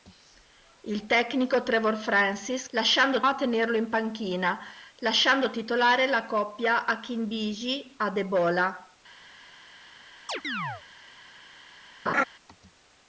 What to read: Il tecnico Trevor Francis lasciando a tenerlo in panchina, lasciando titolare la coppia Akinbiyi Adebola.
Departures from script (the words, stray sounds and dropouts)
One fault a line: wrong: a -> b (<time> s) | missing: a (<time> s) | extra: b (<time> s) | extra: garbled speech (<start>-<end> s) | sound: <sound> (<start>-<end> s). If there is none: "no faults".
sound: chirp (10.3-10.8 s)
sound: laugh (12.1-12.2 s)